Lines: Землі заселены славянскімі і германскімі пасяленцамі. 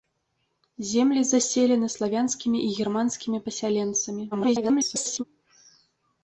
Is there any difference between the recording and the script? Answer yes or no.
yes